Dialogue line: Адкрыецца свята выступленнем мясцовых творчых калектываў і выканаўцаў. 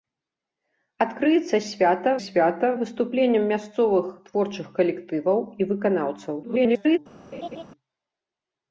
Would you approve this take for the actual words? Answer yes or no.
no